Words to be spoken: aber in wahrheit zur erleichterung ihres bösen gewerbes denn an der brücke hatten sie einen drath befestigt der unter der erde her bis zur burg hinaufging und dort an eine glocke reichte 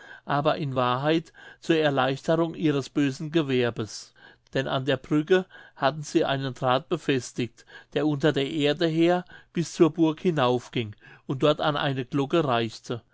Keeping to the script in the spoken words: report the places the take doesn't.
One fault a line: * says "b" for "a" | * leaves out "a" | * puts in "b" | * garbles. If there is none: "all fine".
all fine